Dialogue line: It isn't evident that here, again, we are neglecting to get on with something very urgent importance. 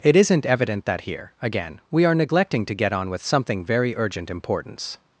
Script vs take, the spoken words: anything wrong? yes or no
no